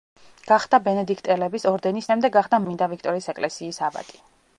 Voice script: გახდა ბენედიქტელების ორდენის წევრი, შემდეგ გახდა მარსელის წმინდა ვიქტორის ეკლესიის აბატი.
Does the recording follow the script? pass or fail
fail